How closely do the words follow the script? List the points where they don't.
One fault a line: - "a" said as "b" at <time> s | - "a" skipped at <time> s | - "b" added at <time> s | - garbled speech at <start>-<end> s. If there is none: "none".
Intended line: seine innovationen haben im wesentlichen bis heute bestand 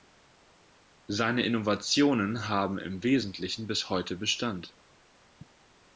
none